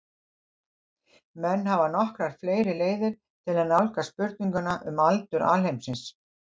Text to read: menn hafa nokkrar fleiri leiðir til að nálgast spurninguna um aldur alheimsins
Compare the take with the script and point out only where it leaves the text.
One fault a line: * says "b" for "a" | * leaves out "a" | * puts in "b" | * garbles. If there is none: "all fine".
all fine